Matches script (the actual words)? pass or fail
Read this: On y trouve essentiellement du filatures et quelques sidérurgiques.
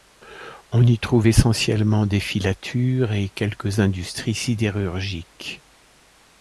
fail